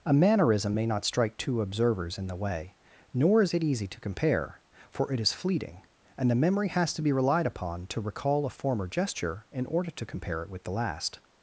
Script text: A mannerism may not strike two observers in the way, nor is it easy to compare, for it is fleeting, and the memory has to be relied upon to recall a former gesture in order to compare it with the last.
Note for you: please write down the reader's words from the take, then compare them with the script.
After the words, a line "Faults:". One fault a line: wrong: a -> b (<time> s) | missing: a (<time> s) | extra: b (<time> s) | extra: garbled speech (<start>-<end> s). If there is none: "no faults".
A mannerism may not strike two observers in the way, nor is it easy to compare, for it is fleeting, and the memory has to be relied upon to recall a former gesture in order to compare it with the last.
Faults:
no faults